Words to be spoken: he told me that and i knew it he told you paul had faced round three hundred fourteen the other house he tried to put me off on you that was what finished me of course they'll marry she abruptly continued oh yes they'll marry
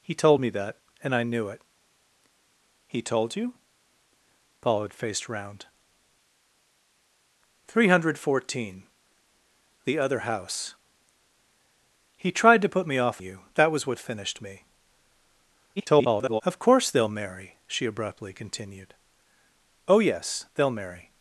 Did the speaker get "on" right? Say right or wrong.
wrong